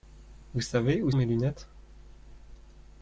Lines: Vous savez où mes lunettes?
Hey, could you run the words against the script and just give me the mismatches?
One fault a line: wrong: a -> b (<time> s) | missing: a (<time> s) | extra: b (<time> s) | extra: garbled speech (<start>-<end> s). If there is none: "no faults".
no faults